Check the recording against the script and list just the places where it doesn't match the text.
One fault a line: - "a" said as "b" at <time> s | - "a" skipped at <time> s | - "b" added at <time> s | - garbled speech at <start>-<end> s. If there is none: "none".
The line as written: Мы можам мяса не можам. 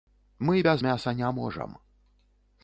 - "можам" said as "без" at 0.6 s